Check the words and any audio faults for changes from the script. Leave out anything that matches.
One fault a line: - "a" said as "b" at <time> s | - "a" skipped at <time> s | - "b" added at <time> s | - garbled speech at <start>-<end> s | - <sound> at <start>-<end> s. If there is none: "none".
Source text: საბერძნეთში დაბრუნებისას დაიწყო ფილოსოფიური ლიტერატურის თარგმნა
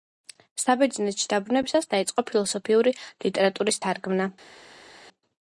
none